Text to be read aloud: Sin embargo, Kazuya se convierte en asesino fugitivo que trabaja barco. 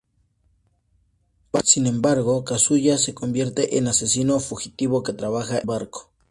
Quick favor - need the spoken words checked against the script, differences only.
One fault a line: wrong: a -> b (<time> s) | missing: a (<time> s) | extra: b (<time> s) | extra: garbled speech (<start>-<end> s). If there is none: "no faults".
no faults